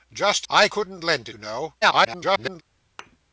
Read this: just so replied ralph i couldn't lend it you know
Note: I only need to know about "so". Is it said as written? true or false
false